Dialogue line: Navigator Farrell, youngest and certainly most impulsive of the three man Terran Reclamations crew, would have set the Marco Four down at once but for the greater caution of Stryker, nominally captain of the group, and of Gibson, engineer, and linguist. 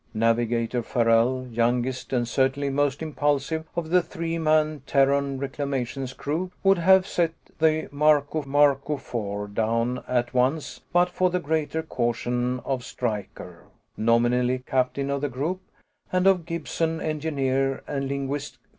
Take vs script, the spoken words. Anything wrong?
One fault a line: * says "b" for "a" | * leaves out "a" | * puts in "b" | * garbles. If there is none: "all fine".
* puts in "Marco"